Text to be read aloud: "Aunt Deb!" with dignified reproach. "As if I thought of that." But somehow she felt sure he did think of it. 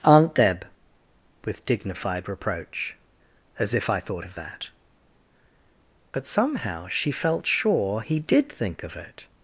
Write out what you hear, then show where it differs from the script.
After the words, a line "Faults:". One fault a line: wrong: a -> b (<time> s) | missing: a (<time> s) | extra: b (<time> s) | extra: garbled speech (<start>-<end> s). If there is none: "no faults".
"Aunt Deb!" with dignified reproach. "As if I thought of that." But somehow she felt sure he did think of it.
Faults:
no faults